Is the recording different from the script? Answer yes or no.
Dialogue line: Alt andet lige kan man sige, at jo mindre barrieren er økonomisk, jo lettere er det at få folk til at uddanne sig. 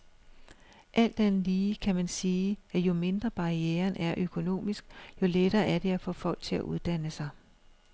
no